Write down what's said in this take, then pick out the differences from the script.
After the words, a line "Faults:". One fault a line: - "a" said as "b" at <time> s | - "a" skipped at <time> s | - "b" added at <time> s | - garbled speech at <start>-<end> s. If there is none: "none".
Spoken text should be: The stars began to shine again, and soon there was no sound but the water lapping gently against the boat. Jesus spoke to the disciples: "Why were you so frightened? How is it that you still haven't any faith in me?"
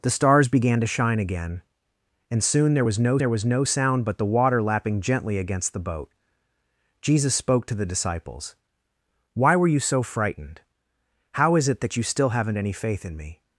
The stars began to shine again, and soon there was no there was no sound but the water lapping gently against the boat. Jesus spoke to the disciples: "Why were you so frightened? How is it that you still haven't any faith in me?"
Faults:
- "there was no" added at 3.2 s